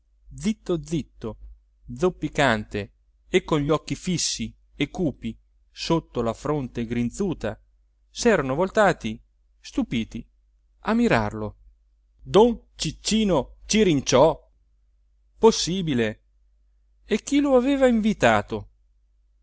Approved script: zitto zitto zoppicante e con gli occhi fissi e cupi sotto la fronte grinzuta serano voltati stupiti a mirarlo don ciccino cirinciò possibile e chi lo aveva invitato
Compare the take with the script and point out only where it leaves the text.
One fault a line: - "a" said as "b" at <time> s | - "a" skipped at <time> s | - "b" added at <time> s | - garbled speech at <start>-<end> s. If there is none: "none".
none